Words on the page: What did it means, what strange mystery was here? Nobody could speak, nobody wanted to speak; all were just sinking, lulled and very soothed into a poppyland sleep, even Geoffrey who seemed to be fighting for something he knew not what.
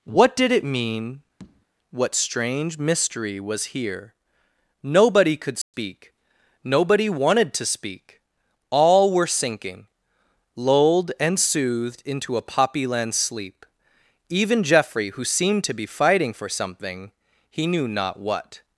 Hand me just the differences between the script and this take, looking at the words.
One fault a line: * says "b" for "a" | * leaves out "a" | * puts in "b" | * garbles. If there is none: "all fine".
* says "mean" for "means"
* leaves out "just"
* leaves out "very"